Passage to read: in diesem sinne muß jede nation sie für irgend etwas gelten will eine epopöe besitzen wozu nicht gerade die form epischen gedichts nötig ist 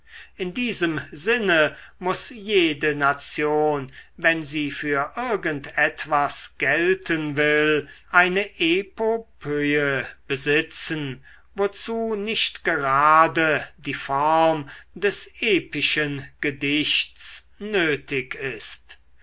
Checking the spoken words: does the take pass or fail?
fail